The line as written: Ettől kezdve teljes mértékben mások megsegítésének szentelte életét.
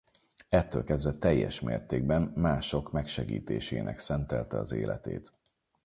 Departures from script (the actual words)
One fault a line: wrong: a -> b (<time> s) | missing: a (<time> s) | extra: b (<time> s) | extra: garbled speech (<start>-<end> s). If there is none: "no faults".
extra: az (4.6 s)